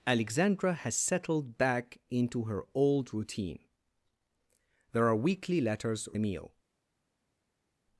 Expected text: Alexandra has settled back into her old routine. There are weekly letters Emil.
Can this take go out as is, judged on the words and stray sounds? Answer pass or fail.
pass